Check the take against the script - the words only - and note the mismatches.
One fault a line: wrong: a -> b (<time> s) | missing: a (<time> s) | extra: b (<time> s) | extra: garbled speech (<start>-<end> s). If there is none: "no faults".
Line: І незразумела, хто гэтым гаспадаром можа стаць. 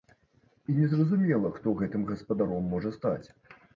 no faults